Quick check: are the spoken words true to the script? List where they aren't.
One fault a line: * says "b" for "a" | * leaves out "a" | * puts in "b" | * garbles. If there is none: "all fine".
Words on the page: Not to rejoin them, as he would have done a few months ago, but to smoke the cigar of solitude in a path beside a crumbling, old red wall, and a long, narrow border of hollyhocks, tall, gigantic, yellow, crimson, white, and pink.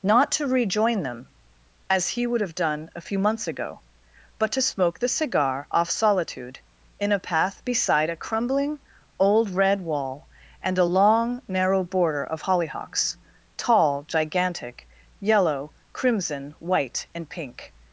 * says "off" for "of"